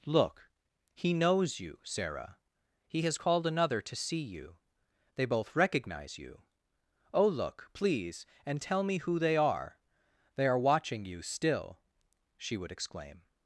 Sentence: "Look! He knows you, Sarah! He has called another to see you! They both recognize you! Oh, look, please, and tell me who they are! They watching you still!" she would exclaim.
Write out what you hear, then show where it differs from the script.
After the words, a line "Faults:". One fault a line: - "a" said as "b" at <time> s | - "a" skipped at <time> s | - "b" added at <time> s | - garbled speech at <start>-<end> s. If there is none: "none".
"Look! He knows you, Sarah! He has called another to see you! They both recognize you! Oh, look, please, and tell me who they are! They are watching you still!" she would exclaim.
Faults:
- "are" added at 10.5 s